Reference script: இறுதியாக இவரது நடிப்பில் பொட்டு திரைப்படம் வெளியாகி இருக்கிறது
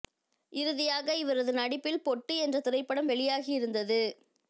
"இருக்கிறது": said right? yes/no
no